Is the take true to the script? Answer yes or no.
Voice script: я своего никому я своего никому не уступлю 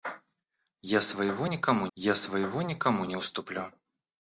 yes